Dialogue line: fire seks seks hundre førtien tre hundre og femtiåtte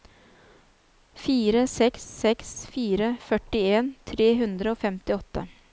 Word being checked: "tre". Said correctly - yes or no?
yes